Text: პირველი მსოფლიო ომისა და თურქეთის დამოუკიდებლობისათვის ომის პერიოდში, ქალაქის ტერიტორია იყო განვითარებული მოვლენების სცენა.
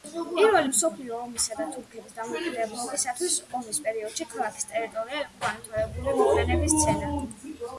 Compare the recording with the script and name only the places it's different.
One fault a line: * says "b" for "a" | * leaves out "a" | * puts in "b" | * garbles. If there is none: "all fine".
all fine